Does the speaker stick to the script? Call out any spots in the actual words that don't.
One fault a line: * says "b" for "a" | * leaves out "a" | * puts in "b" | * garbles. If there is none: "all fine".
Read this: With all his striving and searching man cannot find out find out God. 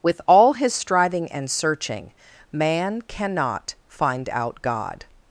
* leaves out "find out"